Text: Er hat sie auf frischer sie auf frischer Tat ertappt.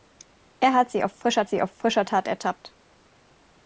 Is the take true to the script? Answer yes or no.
yes